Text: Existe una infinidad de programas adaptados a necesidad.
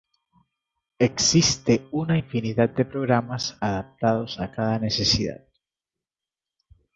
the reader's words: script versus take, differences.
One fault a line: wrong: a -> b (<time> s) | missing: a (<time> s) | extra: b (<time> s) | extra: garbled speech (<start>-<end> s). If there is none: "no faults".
extra: cada (4.5 s)